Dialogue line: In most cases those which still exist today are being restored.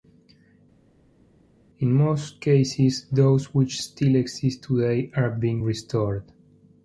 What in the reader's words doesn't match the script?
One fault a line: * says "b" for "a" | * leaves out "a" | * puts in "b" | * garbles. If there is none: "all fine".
all fine